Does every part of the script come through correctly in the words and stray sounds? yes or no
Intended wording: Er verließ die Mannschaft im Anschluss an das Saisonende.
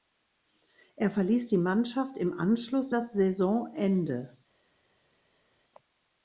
no